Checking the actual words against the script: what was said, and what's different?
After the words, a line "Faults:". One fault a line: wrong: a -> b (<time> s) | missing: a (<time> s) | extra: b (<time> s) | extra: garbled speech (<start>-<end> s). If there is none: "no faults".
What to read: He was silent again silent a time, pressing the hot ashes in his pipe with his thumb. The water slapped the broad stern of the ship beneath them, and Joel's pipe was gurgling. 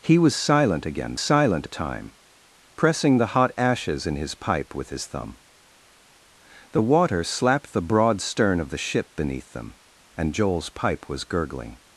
He was silent again silent a time, pressing the hot ashes in his pipe with his thumb. The water slapped the broad stern of the ship beneath them, and Joel's pipe was gurgling.
Faults:
no faults